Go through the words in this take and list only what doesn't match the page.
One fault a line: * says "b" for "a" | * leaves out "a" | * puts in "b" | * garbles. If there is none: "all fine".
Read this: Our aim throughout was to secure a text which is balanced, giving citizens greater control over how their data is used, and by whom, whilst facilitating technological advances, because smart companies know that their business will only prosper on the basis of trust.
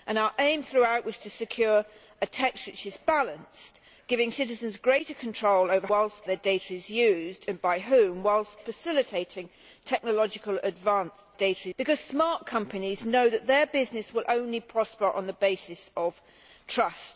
* says "whilst" for "how"
* says "data" for "advances"